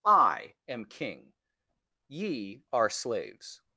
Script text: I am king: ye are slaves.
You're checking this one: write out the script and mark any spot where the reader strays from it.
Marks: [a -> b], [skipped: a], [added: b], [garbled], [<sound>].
I am king: ye are slaves.